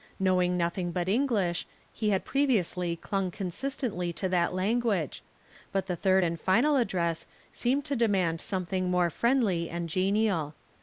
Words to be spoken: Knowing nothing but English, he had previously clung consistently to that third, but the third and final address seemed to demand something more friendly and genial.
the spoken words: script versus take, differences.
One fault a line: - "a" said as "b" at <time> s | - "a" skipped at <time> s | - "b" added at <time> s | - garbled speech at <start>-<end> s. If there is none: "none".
- "third" said as "language" at 4.5 s